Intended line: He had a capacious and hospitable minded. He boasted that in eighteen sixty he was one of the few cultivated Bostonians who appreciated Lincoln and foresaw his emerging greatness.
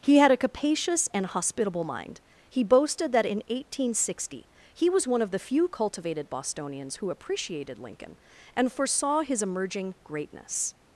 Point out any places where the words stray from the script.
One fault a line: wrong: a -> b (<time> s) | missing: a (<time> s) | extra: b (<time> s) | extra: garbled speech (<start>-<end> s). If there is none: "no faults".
wrong: minded -> mind (1.8 s)